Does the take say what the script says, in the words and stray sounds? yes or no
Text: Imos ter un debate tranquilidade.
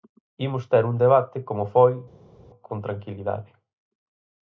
no